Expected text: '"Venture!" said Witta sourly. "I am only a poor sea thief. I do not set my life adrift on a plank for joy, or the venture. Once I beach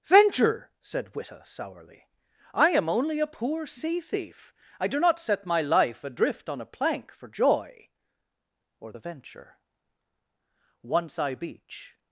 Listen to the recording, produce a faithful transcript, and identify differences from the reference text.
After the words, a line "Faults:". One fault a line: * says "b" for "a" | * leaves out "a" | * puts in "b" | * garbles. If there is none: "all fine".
'"Venture!" said Witta sourly. "I am only a poor sea thief. I do not set my life adrift on a plank for joy, or the venture. Once I beach
Faults:
all fine